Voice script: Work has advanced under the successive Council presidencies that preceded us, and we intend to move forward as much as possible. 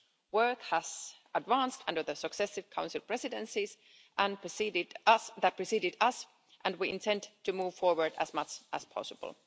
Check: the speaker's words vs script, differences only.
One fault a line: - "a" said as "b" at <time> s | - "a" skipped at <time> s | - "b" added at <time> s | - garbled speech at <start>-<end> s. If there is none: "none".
none